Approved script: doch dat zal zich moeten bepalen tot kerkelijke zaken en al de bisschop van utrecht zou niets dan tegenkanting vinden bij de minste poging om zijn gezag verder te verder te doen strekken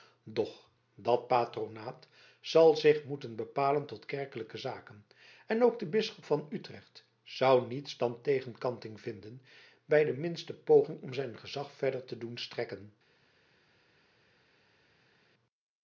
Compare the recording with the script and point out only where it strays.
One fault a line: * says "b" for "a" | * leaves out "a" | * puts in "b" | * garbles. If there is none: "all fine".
* puts in "patronaat"
* says "ook" for "al"
* leaves out "verder te"